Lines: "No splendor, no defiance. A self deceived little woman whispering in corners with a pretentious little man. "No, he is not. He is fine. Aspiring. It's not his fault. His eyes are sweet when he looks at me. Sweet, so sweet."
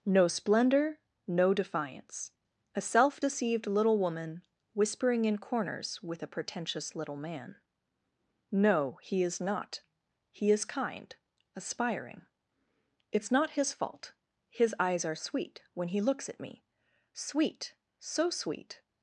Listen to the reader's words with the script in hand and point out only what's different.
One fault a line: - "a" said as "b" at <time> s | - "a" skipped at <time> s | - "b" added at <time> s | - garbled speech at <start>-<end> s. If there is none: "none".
- "fine" said as "kind" at 10.6 s